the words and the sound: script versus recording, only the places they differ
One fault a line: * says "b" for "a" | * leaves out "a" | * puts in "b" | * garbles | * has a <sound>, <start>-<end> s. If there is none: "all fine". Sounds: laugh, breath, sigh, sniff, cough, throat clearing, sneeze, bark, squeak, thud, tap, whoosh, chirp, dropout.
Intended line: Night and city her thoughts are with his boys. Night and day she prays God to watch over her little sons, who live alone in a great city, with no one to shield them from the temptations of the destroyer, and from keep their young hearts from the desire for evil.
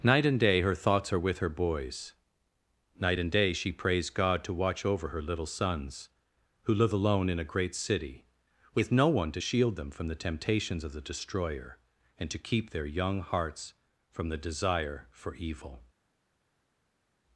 * says "day" for "city"
* says "her" for "his"
* says "to" for "from"